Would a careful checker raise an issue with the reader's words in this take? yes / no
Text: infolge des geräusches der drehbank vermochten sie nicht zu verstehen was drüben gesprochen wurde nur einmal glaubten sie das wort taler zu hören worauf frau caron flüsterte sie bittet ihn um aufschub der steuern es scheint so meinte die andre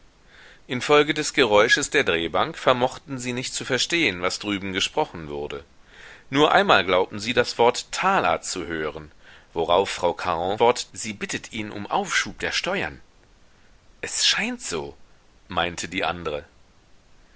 yes